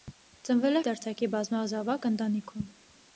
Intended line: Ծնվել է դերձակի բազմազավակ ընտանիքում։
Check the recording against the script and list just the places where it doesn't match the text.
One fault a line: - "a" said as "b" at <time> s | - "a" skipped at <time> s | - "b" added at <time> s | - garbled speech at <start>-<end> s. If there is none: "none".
none